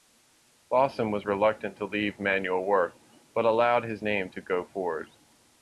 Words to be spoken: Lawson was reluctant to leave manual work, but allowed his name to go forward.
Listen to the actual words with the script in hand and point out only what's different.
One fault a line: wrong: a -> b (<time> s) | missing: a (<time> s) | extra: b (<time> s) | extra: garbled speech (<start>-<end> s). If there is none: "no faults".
no faults